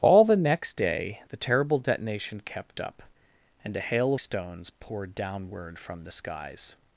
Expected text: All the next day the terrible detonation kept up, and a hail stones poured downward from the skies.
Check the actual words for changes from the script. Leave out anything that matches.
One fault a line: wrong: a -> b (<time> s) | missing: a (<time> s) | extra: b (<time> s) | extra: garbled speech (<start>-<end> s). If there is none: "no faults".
no faults